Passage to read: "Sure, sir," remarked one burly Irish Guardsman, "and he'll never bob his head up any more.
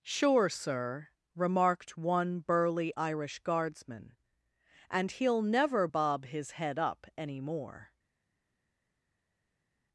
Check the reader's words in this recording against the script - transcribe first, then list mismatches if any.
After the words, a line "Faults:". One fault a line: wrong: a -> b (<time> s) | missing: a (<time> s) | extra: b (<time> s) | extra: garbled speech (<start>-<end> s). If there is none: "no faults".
"Sure, sir," remarked one burly Irish Guardsman, "and he'll never bob his head up any more.
Faults:
no faults